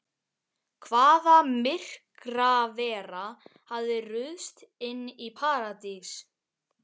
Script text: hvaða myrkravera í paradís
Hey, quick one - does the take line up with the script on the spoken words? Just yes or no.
no